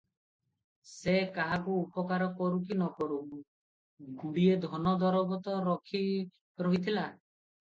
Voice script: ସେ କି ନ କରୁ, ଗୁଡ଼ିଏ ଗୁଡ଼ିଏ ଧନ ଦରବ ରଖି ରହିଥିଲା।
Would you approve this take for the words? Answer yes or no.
no